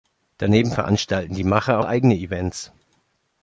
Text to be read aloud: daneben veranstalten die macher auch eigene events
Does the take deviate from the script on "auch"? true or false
true